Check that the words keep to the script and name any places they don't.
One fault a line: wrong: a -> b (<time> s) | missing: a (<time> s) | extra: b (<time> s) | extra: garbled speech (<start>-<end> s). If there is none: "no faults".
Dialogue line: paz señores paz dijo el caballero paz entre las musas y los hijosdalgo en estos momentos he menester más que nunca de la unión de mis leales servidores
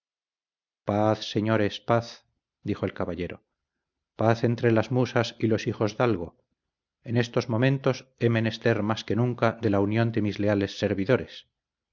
no faults